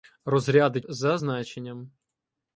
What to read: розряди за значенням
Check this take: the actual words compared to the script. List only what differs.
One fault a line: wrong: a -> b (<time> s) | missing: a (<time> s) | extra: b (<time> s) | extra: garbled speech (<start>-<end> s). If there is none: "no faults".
no faults